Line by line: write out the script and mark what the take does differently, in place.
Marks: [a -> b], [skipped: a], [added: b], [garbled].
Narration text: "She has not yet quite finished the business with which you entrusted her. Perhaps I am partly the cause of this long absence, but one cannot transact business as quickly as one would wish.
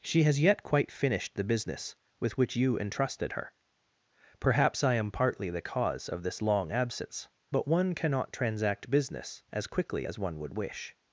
"She has [skipped: not] yet quite finished the business with which you entrusted her. Perhaps I am partly the cause of this long absence, but one cannot transact business as quickly as one would wish.